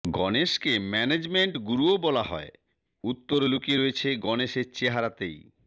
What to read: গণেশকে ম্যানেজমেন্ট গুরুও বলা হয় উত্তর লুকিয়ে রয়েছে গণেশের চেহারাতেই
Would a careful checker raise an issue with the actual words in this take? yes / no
no